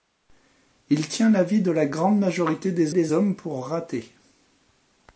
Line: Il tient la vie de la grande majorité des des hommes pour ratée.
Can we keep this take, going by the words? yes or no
yes